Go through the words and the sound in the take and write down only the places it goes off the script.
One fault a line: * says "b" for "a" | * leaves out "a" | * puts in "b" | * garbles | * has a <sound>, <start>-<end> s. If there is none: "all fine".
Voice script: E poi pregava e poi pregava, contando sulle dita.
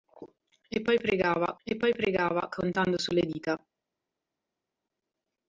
all fine